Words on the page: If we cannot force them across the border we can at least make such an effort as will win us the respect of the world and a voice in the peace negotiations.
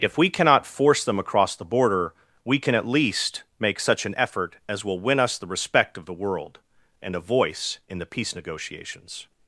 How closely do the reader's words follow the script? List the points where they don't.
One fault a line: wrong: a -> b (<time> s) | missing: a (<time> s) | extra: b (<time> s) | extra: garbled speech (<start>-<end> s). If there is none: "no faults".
no faults